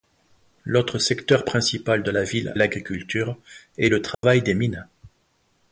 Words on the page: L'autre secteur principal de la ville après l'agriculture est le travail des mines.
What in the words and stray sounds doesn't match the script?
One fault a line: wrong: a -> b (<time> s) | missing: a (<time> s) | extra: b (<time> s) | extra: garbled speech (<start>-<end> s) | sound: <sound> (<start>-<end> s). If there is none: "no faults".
missing: après (2.5 s)
sound: dropout (4.1-4.2 s)